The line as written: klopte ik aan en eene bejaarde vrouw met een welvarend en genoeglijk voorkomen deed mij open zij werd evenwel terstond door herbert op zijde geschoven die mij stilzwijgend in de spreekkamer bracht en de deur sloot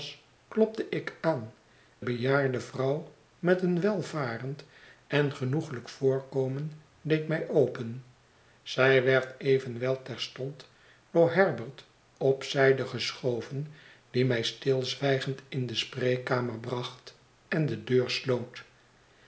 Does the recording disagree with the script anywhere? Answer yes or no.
yes